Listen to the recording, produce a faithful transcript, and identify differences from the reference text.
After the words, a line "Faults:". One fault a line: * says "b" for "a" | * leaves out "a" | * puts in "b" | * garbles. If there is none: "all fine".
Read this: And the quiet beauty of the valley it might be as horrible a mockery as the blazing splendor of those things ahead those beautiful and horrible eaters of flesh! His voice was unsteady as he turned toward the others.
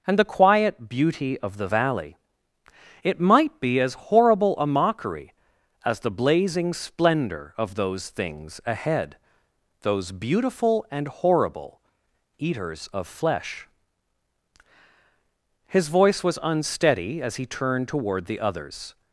And the quiet beauty of the valley it might be as horrible a mockery as the blazing splendor of those things ahead those beautiful and horrible eaters of flesh! His voice was unsteady as he turned toward the others.
Faults:
all fine